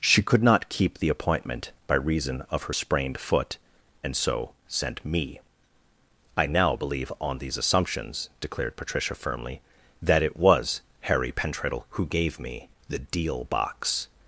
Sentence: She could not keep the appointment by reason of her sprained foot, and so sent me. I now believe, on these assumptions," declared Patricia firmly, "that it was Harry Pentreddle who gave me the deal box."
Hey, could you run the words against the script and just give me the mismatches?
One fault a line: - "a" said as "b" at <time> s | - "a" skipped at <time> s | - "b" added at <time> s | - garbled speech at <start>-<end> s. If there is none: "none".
none